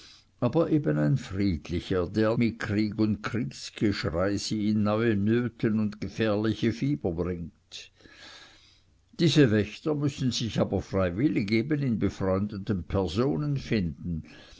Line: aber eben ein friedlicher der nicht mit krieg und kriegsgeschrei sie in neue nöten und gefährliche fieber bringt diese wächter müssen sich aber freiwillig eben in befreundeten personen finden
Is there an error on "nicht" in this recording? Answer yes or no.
yes